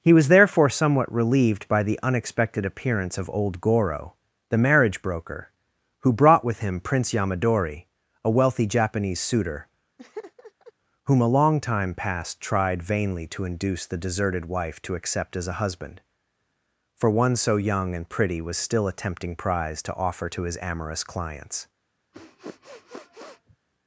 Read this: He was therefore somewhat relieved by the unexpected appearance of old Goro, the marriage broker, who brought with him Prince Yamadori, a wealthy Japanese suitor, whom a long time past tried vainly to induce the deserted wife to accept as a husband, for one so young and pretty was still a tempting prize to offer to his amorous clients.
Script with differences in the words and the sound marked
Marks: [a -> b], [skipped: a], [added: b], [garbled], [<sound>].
He was therefore somewhat relieved by the unexpected appearance of old Goro, the marriage broker, who brought with him Prince Yamadori, a wealthy Japanese suitor, [laugh] whom a long time past tried vainly to induce the deserted wife to accept as a husband, for one so young and pretty was still a tempting prize to offer to his amorous clients. [sniff]